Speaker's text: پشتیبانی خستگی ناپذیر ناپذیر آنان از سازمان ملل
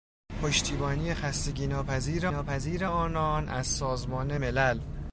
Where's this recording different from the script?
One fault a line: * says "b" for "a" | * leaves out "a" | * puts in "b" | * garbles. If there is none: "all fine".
all fine